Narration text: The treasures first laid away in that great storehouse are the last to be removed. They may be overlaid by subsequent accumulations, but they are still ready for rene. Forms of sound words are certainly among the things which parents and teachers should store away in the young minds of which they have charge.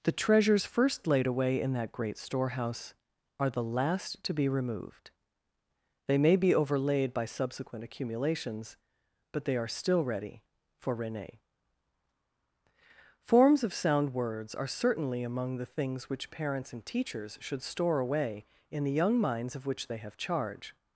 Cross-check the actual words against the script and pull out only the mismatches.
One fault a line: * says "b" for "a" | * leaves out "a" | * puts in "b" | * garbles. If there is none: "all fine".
all fine